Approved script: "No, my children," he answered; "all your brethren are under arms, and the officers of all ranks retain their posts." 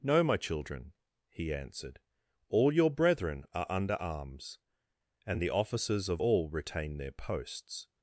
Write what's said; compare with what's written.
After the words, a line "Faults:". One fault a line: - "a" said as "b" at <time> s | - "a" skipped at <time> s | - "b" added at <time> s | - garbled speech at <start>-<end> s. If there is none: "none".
"No, my children," he answered; "all your brethren are under arms, and the officers of all retain their posts."
Faults:
- "ranks" skipped at 6.5 s